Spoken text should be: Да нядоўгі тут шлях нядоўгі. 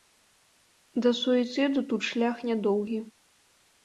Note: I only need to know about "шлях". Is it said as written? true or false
true